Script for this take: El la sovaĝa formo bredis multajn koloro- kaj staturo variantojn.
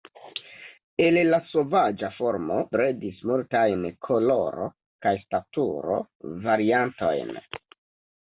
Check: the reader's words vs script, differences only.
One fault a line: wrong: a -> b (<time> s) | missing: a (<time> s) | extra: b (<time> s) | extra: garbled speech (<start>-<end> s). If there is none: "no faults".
no faults